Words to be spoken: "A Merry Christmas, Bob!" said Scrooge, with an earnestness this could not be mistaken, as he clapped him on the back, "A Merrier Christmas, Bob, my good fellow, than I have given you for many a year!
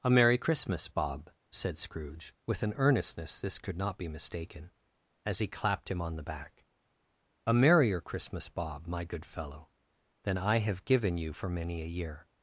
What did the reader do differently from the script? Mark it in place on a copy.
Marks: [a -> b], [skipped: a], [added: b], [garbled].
"A Merry Christmas, Bob!" said Scrooge, with an earnestness this could not be mistaken, as he clapped him on the back, "A Merrier Christmas, Bob, my good fellow, than I have given you for many a year!